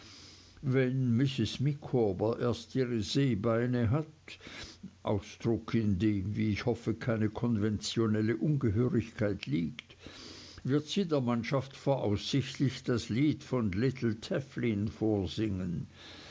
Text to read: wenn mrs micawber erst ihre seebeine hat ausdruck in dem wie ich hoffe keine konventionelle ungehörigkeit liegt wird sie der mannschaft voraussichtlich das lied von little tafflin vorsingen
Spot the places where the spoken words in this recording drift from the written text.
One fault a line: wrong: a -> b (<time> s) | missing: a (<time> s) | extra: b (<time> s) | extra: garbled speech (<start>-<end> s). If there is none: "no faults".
no faults